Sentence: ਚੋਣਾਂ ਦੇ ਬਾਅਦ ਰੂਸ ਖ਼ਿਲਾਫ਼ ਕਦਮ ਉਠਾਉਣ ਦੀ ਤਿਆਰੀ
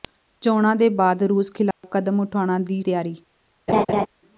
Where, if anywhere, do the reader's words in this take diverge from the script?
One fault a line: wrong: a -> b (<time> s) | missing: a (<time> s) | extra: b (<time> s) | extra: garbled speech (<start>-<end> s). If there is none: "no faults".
no faults